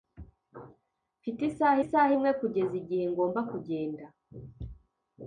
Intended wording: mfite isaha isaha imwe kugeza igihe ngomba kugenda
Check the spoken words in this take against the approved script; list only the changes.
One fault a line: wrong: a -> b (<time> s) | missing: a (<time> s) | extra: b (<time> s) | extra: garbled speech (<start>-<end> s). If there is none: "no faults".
no faults